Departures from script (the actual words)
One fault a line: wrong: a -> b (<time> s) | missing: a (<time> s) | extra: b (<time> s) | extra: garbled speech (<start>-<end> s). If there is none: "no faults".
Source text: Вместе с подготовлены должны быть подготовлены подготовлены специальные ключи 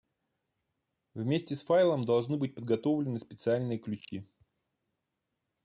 wrong: подготовлены -> файлом (1.6 s)
missing: подготовлены (3.2 s)